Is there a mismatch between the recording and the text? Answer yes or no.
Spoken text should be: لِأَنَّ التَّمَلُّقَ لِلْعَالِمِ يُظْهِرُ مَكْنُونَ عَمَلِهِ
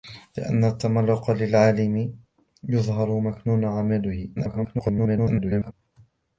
yes